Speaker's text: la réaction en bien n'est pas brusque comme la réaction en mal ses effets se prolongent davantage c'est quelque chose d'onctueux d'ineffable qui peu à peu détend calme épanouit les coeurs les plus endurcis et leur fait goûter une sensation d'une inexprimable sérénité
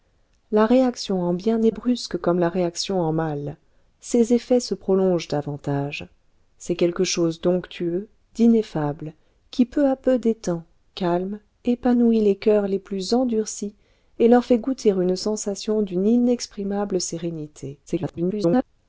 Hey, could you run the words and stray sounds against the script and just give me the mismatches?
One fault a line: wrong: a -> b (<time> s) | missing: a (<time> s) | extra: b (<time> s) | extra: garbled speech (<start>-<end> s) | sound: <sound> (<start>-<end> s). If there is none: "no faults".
missing: pas (1.7 s)
extra: garbled speech (17.9-18.6 s)